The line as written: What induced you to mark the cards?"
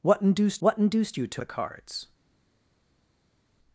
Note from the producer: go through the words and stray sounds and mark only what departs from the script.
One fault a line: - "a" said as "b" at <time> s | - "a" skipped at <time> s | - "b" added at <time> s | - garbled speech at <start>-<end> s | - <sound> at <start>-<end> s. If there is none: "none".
- "what induced" added at 0.6 s
- "mark" skipped at 1.4 s